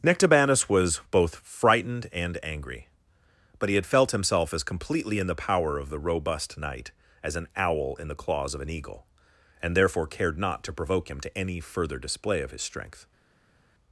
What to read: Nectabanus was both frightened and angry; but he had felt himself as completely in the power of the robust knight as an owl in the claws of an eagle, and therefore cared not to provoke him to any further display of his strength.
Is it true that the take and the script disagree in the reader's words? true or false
false